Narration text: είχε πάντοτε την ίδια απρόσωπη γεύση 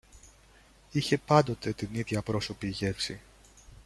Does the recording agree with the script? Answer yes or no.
yes